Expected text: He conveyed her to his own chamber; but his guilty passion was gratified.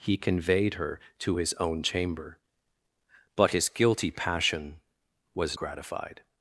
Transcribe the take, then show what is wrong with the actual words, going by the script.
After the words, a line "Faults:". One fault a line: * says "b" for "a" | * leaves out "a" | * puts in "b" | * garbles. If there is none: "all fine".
He conveyed her to his own chamber; but his guilty passion was gratified.
Faults:
all fine